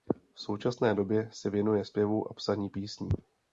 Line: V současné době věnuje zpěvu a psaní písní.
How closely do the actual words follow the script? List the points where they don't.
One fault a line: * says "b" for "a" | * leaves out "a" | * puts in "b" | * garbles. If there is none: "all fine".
* puts in "se"